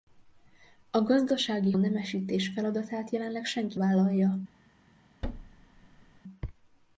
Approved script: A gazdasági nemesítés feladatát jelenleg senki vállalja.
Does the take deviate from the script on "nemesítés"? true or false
false